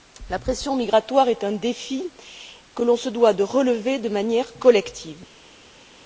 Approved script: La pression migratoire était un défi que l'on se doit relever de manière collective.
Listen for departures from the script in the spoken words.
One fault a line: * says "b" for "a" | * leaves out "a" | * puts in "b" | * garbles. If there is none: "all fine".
* says "est" for "était"
* puts in "de"